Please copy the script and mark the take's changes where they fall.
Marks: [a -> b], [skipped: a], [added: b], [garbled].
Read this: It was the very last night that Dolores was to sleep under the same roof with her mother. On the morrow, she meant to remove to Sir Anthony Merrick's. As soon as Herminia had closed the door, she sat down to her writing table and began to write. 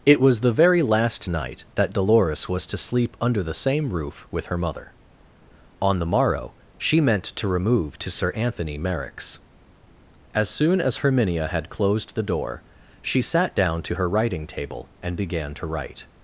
It was the very last night that Dolores was to sleep under the same roof with her mother. On the morrow, she meant to remove to Sir Anthony Merrick's. As soon as Herminia had closed the door, she sat down to her writing table and began to write.